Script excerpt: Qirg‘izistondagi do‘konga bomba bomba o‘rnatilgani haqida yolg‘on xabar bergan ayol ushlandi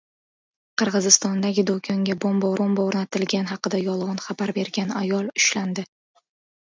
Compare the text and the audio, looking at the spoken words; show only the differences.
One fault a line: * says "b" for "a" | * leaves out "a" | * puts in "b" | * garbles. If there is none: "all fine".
all fine